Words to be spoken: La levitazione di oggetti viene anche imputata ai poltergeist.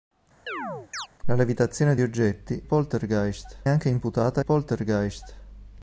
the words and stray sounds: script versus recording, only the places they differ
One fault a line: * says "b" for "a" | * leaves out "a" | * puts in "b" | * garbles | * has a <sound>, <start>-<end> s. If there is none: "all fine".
* has a chirp, 0.5-1.1 s
* says "poltergeist" for "viene"
* leaves out "ai"